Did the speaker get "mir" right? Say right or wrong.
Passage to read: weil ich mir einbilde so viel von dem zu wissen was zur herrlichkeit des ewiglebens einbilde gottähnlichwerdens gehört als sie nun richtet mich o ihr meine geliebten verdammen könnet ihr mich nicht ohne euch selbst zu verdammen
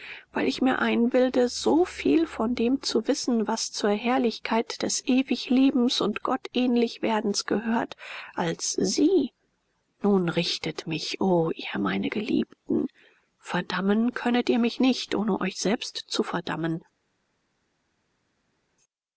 right